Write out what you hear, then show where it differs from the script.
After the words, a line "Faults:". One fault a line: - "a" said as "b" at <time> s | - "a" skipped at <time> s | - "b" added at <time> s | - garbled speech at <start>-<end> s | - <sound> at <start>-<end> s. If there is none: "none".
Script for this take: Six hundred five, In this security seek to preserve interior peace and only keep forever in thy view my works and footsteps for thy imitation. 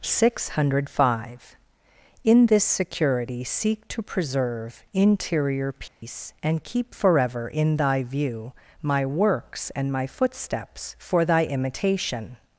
Six hundred five, In this security seek to preserve interior peace and keep forever in thy view my works and my footsteps for thy imitation.
Faults:
- dropout at 5.9-6.0 s
- "only" skipped at 6.6 s
- "my" added at 9.9 s